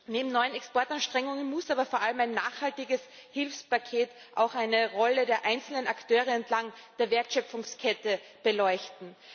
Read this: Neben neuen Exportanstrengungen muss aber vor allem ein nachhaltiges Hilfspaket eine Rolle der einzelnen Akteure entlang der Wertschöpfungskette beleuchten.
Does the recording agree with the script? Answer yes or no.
no